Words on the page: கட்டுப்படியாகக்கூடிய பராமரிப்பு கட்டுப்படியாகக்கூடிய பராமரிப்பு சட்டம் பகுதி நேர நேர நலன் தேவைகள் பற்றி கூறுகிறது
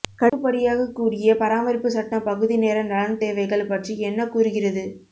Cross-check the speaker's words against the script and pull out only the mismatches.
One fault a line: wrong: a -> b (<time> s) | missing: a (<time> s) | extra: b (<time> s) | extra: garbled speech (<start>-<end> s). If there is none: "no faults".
missing: கட்டுப்படியாகக்கூடிய பராமரிப்பு (1.9 s)
missing: நேர (2.8 s)
extra: என்ன (4.0 s)